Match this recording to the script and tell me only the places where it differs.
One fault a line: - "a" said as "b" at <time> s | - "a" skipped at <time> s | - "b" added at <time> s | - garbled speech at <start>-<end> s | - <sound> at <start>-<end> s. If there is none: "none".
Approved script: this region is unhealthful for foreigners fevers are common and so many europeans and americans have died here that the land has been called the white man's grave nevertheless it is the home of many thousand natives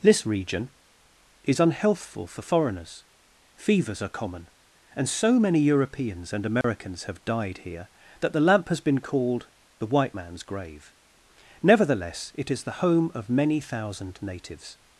- dropout at 6.6-6.6 s
- "land" said as "lamp" at 8.4 s